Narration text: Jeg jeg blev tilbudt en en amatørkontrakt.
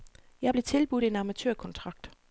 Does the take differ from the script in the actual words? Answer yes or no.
yes